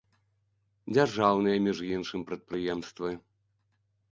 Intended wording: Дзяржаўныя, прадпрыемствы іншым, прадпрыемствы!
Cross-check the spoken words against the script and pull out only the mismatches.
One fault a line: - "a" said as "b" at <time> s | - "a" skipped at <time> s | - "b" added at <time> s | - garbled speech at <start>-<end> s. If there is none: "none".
- "прадпрыемствы" said as "між" at 1.6 s